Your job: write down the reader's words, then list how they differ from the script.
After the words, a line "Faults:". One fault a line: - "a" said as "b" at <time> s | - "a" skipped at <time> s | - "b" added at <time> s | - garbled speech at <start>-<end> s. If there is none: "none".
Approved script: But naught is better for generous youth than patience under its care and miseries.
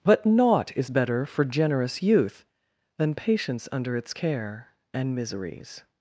But naught is better for generous youth than patience under its care and miseries.
Faults:
none